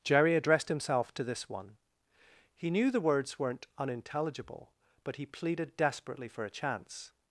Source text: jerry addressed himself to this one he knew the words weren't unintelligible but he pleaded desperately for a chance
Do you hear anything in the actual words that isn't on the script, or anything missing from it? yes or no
no